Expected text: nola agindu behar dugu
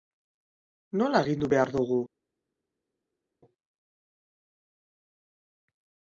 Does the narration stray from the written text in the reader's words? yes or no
no